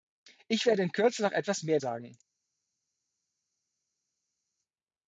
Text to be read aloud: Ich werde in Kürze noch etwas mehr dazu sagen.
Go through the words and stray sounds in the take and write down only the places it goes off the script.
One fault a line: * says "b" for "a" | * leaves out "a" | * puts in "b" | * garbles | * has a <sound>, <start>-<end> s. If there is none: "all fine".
* leaves out "dazu"